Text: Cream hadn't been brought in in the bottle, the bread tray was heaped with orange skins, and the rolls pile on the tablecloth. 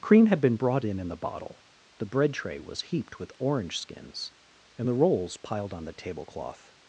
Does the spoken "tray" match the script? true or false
true